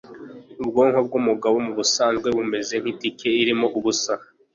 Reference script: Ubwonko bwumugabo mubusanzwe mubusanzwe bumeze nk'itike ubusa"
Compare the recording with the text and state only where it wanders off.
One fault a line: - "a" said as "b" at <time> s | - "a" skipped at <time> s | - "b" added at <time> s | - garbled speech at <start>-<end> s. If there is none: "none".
- "mubusanzwe" skipped at 2.3 s
- "irimo" added at 3.4 s